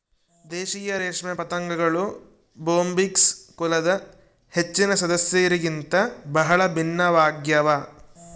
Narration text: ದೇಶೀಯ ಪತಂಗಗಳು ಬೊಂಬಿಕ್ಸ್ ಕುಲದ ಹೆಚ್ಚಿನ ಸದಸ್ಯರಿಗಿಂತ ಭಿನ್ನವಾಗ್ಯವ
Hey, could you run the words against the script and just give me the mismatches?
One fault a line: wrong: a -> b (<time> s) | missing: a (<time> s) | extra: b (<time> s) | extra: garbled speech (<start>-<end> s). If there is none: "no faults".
extra: ರೇಷ್ಮೆ (1.0 s)
extra: ಬಹಳ (6.3 s)